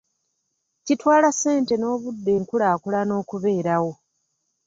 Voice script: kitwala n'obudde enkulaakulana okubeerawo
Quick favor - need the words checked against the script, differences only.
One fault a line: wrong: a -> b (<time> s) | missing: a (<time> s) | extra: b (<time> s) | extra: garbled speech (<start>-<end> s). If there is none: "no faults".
extra: ssente (1.3 s)